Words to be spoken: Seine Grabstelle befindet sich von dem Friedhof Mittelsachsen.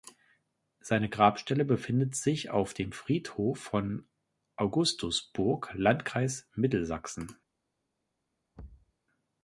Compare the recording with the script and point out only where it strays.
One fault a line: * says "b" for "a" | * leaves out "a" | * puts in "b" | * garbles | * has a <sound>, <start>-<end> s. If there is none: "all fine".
* says "auf" for "von"
* puts in "von Augustusburg Landkreis"
* has a thud, 8.6-8.9 s